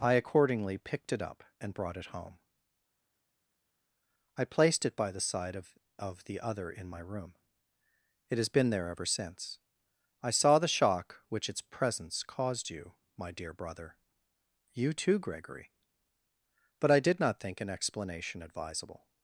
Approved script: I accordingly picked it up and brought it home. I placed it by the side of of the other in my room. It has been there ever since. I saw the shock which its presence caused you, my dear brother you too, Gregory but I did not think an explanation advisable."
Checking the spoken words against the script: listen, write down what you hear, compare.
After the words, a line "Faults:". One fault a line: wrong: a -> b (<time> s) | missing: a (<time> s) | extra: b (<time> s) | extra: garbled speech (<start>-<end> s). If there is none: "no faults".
I accordingly picked it up and brought it home. I placed it by the side of of the other in my room. It has been there ever since. I saw the shock which its presence caused you, my dear brother you too, Gregory but I did not think an explanation advisable."
Faults:
no faults